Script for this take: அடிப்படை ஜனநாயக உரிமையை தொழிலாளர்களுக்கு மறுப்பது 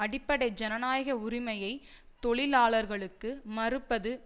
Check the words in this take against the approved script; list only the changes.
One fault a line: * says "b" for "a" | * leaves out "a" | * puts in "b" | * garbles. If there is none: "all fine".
all fine